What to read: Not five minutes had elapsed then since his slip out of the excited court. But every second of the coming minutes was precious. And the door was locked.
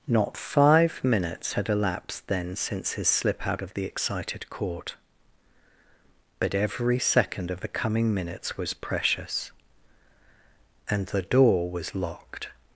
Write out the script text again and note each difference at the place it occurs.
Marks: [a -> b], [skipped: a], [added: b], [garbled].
Not five minutes had elapsed then since his slip out of the excited court. But every second of the coming minutes was precious. And the door was locked.